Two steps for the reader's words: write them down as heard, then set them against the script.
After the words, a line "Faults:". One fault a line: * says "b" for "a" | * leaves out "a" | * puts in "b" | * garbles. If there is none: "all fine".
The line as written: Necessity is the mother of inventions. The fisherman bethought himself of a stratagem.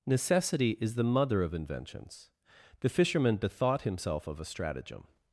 Necessity is the mother of inventions. The fisherman bethought himself of a stratagem.
Faults:
all fine